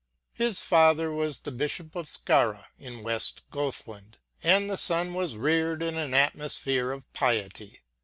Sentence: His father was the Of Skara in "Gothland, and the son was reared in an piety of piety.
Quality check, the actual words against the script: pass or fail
fail